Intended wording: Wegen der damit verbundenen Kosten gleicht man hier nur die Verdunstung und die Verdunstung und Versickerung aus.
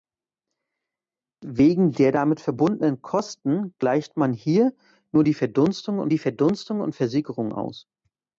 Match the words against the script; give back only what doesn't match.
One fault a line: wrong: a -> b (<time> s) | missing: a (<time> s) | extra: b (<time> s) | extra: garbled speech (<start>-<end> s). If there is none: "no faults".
no faults